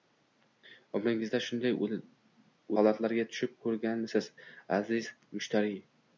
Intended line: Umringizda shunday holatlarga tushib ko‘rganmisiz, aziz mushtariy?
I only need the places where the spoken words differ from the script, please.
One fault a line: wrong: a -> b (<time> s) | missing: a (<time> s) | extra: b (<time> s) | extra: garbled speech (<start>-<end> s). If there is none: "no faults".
no faults